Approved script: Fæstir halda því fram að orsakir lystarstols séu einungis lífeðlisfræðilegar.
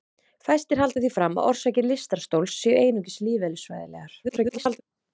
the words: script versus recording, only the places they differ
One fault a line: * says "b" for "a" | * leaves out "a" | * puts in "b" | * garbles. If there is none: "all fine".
* garbles